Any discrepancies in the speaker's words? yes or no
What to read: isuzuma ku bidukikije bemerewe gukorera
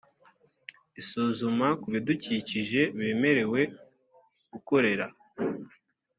no